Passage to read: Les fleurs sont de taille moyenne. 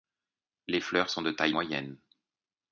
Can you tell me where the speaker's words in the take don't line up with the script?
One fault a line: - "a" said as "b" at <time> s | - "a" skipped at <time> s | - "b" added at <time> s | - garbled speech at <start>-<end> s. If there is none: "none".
none